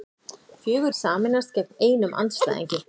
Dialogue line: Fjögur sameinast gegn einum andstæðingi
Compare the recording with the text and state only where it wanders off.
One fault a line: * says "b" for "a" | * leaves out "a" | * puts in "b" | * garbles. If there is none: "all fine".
all fine